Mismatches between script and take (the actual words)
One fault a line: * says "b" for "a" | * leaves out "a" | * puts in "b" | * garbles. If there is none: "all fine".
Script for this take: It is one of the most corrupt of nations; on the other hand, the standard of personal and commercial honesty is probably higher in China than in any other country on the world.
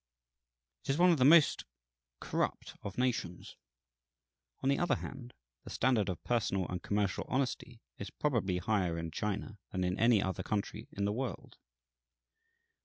* says "in" for "on"